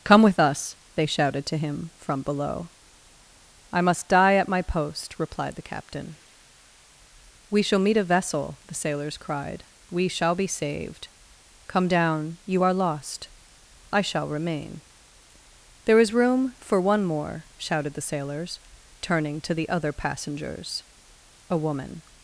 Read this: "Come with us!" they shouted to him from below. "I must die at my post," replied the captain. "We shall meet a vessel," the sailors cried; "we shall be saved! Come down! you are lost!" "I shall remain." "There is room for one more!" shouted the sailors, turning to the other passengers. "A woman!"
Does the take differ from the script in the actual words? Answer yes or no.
no